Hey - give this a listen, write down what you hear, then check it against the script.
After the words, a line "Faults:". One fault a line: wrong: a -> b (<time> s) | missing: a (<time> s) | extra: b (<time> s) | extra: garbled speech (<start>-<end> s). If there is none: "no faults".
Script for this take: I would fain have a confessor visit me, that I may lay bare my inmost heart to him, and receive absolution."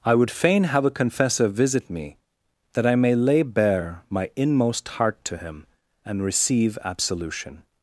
I would fain have a confessor visit me, that I may lay bare my inmost heart to him, and receive absolution."
Faults:
no faults